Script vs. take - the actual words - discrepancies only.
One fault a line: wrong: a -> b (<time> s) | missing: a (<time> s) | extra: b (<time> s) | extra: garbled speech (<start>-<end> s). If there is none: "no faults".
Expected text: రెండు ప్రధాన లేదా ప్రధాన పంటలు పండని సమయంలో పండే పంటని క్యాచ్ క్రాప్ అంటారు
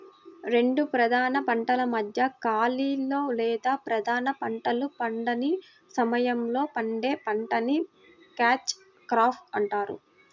extra: పంటల మధ్య ఖాళీలో (1.5 s)